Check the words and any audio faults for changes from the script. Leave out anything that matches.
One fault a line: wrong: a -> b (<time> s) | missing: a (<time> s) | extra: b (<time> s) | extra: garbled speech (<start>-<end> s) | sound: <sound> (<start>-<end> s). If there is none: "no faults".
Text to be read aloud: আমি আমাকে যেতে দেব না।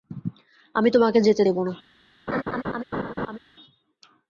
wrong: আমাকে -> তোমাকে (0.9 s)
sound: laugh (2.3-3.4 s)